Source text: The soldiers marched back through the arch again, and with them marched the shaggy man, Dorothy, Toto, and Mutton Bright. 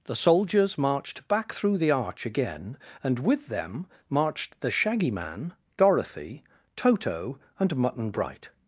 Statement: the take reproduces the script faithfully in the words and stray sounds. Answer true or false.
true